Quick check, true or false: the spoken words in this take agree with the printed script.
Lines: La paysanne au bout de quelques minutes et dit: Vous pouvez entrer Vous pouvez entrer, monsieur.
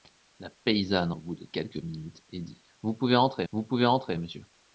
true